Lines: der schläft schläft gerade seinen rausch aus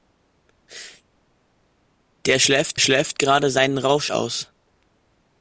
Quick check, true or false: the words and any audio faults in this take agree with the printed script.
true